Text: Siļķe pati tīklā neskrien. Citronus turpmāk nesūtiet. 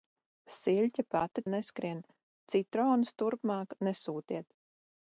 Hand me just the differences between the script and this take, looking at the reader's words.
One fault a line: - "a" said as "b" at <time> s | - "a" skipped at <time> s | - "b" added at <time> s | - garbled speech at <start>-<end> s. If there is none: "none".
- "tīklā" skipped at 1.4 s